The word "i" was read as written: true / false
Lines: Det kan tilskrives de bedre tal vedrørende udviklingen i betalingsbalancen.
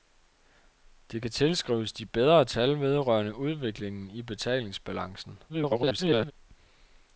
true